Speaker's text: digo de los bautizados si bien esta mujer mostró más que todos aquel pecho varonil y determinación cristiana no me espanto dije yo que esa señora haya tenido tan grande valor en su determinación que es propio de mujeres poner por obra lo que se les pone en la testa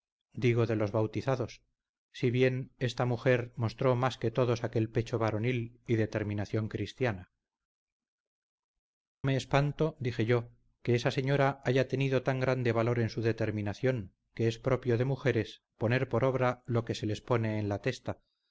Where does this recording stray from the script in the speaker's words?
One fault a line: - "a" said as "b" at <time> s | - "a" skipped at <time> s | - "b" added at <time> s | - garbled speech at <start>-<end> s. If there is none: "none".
- "no" skipped at 7.3 s